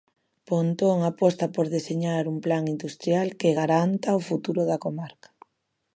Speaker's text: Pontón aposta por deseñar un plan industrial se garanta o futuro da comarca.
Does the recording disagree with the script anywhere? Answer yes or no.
yes